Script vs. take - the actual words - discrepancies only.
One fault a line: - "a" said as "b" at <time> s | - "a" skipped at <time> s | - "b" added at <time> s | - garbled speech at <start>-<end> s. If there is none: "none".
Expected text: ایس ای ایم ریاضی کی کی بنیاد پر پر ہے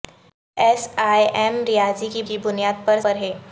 none